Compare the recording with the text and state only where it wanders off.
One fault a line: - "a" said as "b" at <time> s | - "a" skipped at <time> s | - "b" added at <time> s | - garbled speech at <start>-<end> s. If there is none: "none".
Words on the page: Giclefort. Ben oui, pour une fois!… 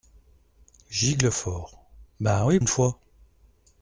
- "pour" skipped at 2.6 s